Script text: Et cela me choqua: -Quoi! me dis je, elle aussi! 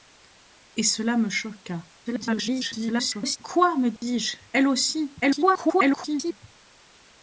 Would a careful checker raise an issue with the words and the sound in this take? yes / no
yes